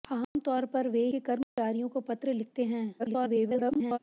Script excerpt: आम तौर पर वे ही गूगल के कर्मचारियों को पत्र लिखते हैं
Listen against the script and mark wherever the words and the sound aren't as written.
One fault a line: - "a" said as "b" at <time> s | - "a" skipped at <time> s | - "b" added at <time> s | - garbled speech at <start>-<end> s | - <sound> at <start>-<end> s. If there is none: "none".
- dropout at 0.2-0.4 s
- "ही गूगल" skipped at 1.0 s
- dropout at 1.4-1.6 s
- garbled speech at 3.0-4.0 s